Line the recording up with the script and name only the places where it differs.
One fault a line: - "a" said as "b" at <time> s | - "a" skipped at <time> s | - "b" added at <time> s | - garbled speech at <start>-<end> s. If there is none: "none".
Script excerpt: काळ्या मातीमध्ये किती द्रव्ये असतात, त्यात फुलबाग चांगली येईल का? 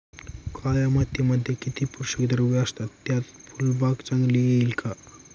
- "पोषक" added at 1.9 s